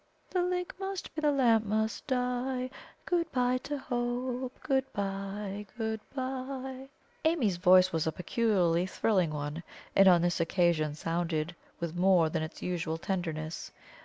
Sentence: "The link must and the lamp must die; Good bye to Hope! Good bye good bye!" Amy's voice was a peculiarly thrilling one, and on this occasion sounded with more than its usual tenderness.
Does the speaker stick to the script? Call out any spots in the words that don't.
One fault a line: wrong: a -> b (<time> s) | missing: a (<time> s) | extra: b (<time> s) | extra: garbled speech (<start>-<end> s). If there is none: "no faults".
no faults